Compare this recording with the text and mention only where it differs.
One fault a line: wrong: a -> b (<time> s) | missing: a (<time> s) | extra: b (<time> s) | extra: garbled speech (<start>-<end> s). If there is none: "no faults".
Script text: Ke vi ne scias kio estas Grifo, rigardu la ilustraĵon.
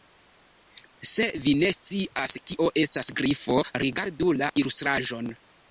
wrong: Ke -> Se (1.1 s)